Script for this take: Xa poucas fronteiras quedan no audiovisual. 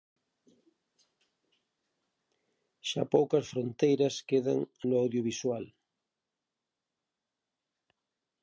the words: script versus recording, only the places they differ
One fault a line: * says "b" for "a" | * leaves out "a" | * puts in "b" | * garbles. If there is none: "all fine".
all fine